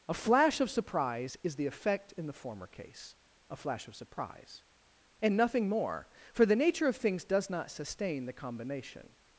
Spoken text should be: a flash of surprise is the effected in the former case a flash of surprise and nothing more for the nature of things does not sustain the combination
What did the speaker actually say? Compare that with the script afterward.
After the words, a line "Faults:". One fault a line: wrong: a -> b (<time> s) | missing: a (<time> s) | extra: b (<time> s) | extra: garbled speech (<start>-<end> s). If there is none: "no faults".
a flash of surprise is the effect in the former case a flash of surprise and nothing more for the nature of things does not sustain the combination
Faults:
wrong: effected -> effect (1.7 s)